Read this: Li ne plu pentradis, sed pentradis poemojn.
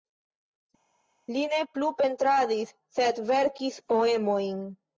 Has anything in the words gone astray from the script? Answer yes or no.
yes